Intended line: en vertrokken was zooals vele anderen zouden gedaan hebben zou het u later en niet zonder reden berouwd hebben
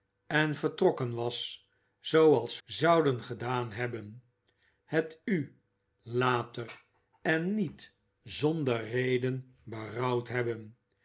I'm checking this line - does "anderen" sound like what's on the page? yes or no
no